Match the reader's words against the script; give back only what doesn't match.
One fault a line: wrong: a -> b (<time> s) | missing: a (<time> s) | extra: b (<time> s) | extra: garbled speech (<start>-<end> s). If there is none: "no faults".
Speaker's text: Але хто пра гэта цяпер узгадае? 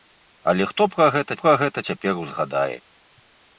extra: пра гэта (1.4 s)